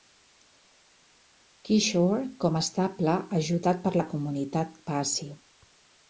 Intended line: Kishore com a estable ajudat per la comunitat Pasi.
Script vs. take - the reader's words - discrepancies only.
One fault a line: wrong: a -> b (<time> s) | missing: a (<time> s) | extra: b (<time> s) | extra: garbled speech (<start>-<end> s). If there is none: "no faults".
no faults